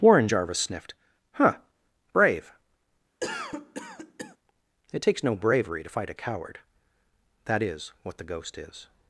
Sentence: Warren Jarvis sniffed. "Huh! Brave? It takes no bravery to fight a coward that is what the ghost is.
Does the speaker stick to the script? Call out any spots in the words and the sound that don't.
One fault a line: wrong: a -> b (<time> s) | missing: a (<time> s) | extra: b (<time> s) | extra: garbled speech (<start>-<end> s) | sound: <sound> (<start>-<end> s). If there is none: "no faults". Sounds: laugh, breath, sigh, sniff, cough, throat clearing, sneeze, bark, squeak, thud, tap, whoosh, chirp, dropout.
sound: cough (3.2-4.4 s)